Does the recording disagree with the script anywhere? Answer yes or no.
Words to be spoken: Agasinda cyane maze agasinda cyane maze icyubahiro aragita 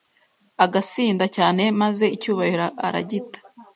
yes